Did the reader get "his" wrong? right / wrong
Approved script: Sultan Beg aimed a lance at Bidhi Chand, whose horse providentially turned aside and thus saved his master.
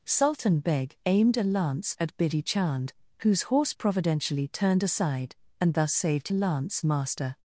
wrong